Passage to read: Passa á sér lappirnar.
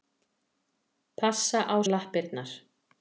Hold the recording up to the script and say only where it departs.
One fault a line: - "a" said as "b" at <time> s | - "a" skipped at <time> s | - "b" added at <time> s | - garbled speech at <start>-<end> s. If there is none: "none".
- "sér" skipped at 1.8 s